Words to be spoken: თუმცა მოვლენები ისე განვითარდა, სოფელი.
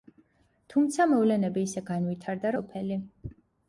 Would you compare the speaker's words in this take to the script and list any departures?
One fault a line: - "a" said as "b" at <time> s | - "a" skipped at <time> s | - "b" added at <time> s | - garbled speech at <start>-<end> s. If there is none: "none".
none